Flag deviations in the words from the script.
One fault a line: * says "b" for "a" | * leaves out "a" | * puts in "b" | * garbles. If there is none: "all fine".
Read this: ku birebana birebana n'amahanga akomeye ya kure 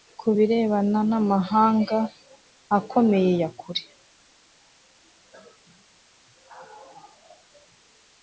* leaves out "birebana"